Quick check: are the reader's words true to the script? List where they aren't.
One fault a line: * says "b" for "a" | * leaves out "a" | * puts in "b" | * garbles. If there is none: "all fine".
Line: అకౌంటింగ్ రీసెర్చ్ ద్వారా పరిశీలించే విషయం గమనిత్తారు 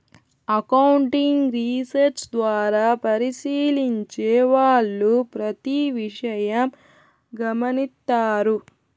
* puts in "వాళ్ళు ప్రతి"